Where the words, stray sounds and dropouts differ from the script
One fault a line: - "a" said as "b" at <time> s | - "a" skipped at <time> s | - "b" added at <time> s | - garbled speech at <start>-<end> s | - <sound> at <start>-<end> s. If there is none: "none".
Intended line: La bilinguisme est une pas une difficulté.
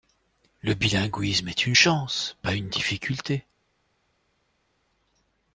- "La" said as "Le" at 0.6 s
- "chance" added at 1.7 s